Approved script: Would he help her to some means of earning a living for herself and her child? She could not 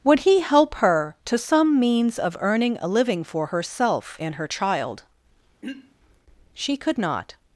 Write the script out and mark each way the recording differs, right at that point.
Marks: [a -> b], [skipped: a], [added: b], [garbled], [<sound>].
Would he help her to some means of earning a living for herself and her child? [throat clearing] She could not